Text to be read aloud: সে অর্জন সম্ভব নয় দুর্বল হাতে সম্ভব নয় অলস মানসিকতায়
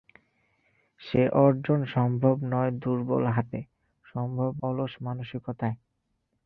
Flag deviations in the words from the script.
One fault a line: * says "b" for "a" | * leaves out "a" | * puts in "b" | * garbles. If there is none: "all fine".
* leaves out "নয়"